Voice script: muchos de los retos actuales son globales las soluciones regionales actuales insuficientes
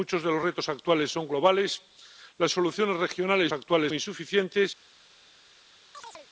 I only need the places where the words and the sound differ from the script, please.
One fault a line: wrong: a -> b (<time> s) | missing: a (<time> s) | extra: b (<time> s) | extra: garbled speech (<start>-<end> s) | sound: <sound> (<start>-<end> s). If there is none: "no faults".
sound: chirp (5.9-6.3 s)